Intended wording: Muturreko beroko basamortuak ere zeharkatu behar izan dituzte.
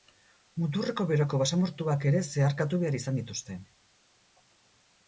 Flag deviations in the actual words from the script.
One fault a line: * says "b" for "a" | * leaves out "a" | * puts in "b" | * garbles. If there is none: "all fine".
all fine